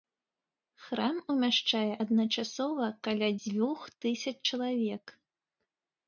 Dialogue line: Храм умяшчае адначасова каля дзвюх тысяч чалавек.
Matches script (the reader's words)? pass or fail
pass